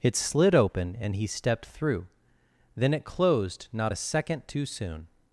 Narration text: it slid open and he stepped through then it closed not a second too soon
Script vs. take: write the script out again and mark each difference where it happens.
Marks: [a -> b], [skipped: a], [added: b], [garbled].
it slid open and he stepped through then it closed not a second too soon